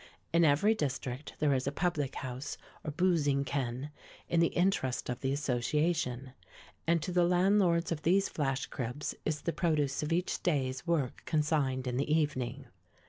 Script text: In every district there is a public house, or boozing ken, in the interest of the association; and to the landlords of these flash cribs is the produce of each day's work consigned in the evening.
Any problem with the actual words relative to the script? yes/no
no